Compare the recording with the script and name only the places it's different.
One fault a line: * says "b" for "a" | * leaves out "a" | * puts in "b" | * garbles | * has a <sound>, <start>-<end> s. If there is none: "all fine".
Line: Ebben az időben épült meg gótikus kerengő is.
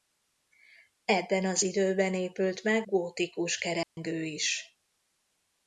* has a dropout, 3.8-4.0 s